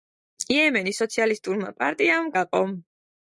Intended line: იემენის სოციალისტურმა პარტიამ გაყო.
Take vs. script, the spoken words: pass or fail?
pass